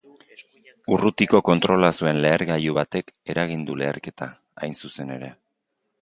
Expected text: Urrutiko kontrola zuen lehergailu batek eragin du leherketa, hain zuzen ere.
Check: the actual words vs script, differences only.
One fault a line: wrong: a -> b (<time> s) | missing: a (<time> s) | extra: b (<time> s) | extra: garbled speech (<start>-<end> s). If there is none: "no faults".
no faults